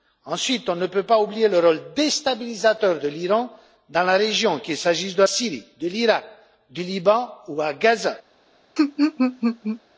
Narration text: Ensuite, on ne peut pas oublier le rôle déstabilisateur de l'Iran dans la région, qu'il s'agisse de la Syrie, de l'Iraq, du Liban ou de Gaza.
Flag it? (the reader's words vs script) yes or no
yes